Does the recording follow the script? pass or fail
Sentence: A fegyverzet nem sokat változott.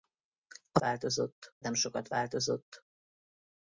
fail